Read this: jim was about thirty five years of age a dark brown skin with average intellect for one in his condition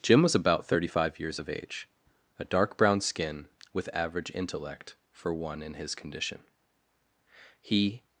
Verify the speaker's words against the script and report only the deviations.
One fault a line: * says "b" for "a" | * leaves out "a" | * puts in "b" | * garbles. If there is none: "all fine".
* puts in "he"